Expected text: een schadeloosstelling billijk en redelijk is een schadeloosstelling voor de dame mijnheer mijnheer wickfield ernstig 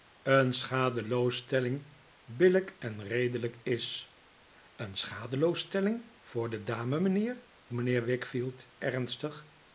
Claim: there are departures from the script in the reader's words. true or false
false